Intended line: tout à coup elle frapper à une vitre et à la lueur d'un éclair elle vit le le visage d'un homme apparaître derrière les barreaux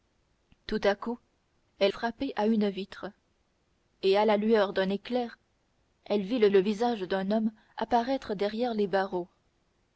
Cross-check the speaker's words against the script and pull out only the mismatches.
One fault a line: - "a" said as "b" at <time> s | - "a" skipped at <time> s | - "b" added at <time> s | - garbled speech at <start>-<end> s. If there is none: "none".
none